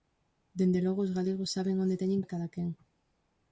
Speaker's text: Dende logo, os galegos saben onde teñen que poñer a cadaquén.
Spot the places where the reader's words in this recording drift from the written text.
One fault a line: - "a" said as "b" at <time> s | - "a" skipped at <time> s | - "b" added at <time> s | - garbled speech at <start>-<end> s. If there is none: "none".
- "que poñer" skipped at 2.2 s